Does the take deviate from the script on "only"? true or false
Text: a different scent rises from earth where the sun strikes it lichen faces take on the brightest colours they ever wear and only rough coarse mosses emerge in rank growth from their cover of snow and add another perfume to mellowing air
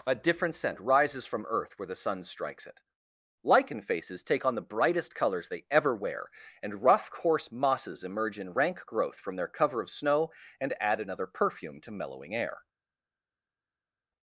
true